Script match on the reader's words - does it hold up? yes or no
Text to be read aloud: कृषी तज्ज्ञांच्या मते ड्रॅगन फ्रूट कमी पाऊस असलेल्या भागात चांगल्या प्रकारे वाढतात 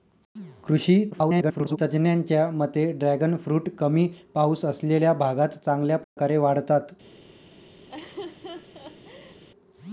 no